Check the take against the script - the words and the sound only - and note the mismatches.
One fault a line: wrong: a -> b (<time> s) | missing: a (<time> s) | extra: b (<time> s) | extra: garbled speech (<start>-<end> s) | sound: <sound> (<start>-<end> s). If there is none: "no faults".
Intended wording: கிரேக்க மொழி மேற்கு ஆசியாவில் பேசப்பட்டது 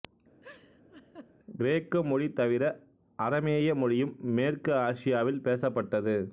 sound: laugh (0.4-1.3 s)
extra: தவிர அரமேய மொழியும் (2.3 s)